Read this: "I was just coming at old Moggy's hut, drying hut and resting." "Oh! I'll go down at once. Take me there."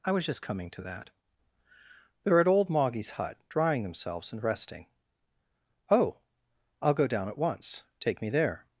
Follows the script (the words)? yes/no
no